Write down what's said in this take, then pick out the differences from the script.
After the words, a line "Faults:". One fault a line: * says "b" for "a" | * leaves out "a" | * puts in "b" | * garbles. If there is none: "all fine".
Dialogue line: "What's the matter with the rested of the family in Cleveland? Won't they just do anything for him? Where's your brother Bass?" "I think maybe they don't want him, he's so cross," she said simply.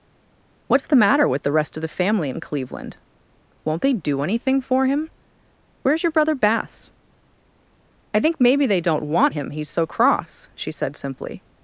"What's the matter with the rest of the family in Cleveland? Won't they do anything for him? Where's your brother Bass?" "I think maybe they don't want him, he's so cross," she said simply.
Faults:
* says "rest" for "rested"
* leaves out "just"